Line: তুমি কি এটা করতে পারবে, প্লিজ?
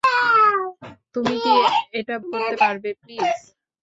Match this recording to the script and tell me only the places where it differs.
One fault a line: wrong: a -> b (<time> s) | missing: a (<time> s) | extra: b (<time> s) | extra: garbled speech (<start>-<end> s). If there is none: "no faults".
no faults